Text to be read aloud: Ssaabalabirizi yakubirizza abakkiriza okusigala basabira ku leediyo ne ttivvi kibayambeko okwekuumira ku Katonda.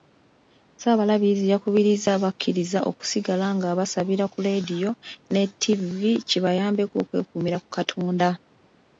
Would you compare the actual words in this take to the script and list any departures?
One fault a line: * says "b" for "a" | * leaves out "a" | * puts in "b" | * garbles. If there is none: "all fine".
* puts in "nga"